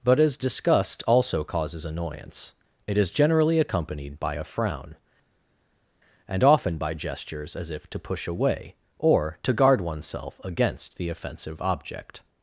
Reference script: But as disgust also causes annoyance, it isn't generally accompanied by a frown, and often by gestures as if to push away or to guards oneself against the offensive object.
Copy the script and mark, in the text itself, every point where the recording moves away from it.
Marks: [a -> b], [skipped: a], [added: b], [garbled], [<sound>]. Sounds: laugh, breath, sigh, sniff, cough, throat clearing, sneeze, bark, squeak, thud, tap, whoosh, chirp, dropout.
But as disgust also causes annoyance, it [isn't -> is] generally accompanied by a frown, and often by gestures as if to push away or to [guards -> guard] oneself against the offensive object.